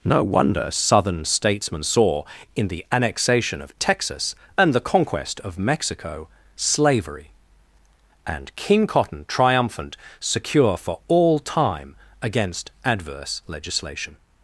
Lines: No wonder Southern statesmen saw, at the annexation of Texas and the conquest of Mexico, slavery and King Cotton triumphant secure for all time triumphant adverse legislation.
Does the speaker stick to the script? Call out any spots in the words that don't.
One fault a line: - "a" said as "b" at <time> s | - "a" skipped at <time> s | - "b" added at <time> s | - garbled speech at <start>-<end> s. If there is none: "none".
- "at" said as "in" at 2.6 s
- "triumphant" said as "against" at 12.2 s